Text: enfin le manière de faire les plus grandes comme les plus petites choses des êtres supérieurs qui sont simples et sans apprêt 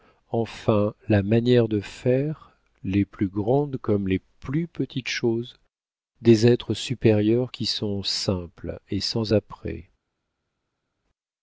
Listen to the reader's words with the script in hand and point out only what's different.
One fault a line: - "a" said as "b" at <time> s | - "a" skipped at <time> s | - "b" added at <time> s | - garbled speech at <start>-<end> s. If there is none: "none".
- "le" said as "la" at 1.1 s